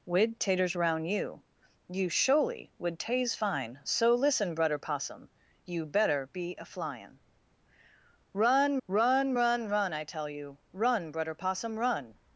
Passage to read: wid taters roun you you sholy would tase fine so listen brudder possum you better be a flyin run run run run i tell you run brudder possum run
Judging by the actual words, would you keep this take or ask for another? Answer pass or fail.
pass